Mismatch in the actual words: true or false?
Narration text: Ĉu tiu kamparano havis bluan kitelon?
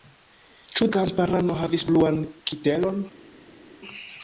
true